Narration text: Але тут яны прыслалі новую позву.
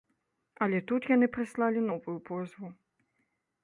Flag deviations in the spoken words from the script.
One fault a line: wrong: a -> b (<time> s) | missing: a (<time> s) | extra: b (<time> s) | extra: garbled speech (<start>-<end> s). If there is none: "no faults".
no faults